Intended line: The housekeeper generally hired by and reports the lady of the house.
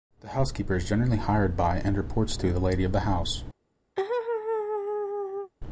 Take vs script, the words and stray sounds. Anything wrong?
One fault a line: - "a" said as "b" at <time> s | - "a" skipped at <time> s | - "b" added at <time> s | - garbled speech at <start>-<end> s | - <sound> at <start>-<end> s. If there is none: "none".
- "is" added at 0.8 s
- "to" added at 2.4 s
- laugh at 4.0-5.5 s